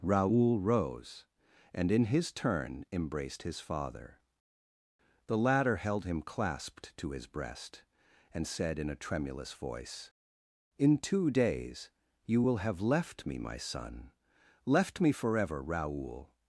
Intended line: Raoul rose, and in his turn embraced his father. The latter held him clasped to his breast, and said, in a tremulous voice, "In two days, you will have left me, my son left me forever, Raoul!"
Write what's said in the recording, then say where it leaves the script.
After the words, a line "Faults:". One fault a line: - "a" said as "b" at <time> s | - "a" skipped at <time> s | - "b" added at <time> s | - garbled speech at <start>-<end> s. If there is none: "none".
Raoul rose, and in his turn embraced his father. The latter held him clasped to his breast, and said, in a tremulous voice, "In two days, you will have left me, my son left me forever, Raoul!"
Faults:
none